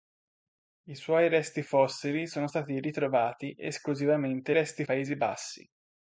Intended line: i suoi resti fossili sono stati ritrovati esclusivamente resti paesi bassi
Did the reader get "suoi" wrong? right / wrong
right